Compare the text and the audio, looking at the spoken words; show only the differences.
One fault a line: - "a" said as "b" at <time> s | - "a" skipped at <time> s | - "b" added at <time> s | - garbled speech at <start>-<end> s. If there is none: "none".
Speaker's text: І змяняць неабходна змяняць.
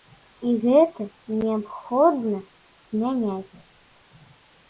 - "змяняць" said as "гэта" at 0.6 s